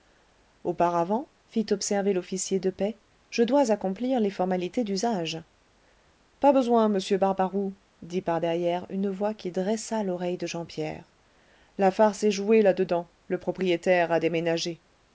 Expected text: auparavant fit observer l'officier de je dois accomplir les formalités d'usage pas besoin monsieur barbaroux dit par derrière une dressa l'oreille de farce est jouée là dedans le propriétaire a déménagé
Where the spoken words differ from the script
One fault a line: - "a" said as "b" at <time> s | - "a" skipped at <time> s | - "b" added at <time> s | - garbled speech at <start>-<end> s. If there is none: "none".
- "paix" added at 2.7 s
- "voix qui" added at 9.1 s
- "jean pierre la" added at 10.5 s